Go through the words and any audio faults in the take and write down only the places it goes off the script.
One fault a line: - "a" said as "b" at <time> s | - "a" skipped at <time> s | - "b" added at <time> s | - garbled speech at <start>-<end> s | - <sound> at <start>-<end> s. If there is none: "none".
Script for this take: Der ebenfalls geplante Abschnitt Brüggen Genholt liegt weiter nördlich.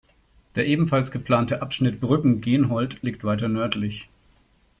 none